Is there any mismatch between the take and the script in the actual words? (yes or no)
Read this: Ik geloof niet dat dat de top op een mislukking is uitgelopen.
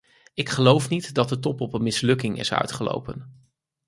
yes